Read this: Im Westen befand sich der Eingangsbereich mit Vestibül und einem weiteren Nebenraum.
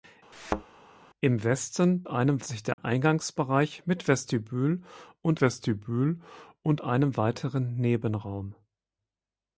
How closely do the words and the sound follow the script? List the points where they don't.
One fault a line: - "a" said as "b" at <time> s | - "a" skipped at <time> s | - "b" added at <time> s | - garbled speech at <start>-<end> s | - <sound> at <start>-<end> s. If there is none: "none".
- thud at 0.3-0.6 s
- "befand" said as "einem" at 2.1 s
- dropout at 2.7-2.8 s
- "Vestibül und" added at 5.4 s